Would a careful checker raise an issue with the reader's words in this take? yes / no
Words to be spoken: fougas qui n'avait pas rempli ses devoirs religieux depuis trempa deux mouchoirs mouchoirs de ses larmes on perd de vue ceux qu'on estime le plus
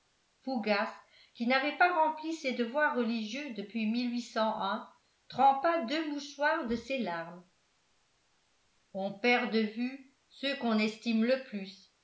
yes